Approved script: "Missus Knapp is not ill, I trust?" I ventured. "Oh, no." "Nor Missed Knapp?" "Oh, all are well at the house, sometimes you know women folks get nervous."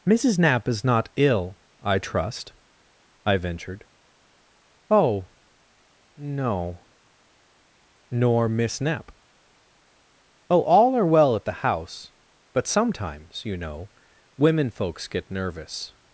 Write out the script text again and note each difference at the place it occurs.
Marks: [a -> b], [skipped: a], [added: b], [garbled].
"Missus Knapp is not ill, I trust?" I ventured. "Oh, no." "Nor [Missed -> Miss] Knapp?" "Oh, all are well at the house, [added: but] sometimes you know women folks get nervous."